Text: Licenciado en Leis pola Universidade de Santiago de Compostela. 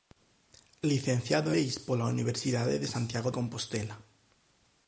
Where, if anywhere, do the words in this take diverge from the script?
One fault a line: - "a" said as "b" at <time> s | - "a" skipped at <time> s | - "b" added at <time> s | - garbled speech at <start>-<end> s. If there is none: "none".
- "en" skipped at 1.5 s
- "de" skipped at 3.3 s